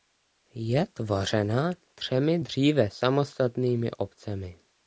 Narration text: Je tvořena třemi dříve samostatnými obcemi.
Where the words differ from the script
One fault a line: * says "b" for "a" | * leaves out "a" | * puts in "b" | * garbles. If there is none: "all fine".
all fine